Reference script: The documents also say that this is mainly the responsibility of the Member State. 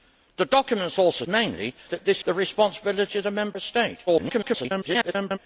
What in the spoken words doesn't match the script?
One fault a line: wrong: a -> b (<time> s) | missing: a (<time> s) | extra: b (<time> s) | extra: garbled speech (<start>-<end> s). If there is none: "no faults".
wrong: say -> mainly (1.3 s)
missing: is mainly (2.2 s)
extra: garbled speech (4.1-5.4 s)